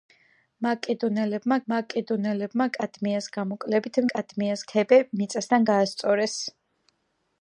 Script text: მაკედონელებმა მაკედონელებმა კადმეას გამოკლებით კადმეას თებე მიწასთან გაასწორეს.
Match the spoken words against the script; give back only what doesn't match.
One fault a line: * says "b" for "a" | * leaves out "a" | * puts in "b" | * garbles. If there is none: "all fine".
all fine